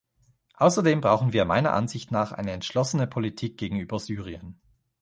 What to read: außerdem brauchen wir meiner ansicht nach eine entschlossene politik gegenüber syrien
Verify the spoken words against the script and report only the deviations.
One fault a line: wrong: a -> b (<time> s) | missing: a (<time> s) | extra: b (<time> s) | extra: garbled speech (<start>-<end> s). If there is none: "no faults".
no faults